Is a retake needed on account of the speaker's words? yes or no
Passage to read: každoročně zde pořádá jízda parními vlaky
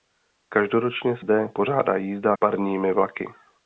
no